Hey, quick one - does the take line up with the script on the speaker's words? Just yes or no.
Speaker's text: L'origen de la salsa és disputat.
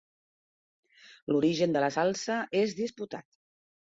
yes